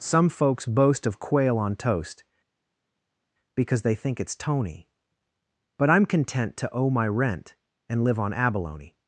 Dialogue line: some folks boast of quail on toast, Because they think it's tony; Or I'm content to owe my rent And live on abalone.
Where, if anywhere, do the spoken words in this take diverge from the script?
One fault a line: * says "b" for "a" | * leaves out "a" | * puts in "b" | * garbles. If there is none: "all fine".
* says "But" for "Or"